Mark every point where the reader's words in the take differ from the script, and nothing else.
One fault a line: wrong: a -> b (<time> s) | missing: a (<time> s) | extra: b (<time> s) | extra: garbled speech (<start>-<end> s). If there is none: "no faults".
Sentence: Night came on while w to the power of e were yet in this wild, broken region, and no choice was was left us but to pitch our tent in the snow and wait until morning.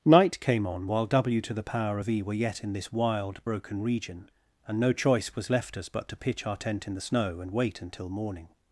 missing: was (5.5 s)